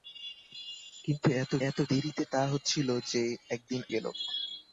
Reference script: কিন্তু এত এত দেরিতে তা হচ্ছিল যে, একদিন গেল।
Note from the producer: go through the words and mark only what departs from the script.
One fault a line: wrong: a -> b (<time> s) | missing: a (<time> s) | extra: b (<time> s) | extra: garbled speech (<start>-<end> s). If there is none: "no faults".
no faults